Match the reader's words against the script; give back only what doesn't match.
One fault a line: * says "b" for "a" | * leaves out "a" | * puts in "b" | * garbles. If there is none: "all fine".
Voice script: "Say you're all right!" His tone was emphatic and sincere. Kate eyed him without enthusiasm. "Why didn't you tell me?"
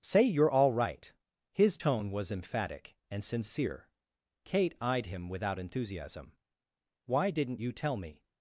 all fine